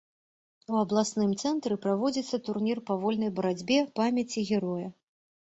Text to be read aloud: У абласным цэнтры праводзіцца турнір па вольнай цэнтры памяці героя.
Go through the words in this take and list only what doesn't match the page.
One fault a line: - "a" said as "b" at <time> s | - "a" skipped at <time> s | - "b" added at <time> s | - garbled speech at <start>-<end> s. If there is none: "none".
- "цэнтры" said as "барацьбе" at 3.4 s